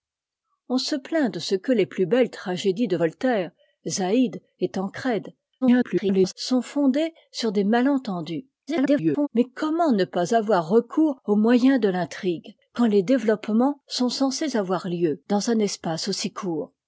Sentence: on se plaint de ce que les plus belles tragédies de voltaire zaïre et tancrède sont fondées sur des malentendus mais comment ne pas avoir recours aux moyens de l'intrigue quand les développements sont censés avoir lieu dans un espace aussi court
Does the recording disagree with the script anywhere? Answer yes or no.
yes